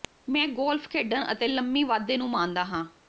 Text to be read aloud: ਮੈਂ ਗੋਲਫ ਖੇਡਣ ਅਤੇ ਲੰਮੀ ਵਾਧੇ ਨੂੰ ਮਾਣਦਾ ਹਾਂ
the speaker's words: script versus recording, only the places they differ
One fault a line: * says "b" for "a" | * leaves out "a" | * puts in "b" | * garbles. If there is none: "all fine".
all fine